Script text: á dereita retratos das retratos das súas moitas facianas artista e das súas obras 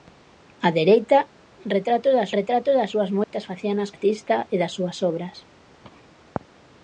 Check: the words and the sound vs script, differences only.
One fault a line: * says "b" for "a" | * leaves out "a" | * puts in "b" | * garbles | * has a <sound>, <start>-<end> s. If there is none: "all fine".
* has a dropout, 3.2-3.3 s